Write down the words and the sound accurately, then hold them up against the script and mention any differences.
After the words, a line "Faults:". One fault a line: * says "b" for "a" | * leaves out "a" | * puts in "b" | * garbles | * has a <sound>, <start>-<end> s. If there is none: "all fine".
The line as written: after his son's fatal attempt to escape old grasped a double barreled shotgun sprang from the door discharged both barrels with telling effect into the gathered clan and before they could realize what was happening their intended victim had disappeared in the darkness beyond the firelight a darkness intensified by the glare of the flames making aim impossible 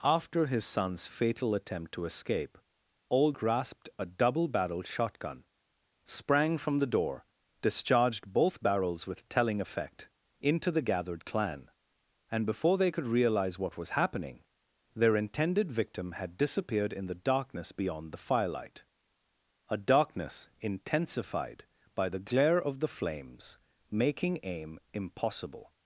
after his son's fatal attempt to escape old grasped a double barreled shotgun sprang from the door discharged both barrels with telling effect into the gathered clan and before they could realize what was happening their intended victim had disappeared in the darkness beyond the firelight a darkness intensified by the glare of the flames making aim impossible
Faults:
all fine